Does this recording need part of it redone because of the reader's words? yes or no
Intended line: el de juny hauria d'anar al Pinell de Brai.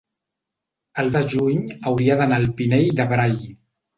no